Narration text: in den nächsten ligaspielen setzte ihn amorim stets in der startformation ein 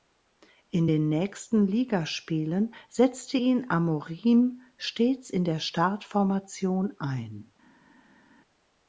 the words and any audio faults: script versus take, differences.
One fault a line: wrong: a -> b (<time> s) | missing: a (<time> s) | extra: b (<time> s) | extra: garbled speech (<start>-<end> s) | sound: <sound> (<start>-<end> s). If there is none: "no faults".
no faults